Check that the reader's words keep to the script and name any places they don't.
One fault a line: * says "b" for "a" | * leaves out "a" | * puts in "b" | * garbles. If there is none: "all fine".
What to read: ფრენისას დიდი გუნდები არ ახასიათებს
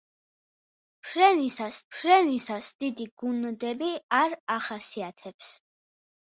* puts in "ფრენისას"